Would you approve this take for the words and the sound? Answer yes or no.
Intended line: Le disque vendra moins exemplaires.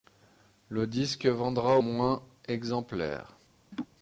no